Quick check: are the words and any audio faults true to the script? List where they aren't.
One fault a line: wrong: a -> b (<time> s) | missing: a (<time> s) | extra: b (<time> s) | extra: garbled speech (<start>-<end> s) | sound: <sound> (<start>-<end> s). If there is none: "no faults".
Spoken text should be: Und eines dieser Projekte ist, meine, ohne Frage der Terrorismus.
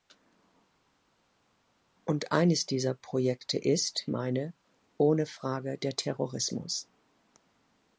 no faults